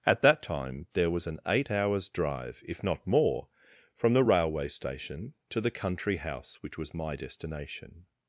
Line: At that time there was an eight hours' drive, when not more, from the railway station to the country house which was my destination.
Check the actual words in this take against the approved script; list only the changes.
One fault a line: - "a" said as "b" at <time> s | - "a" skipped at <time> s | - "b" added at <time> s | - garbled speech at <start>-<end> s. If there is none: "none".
- "when" said as "if" at 2.6 s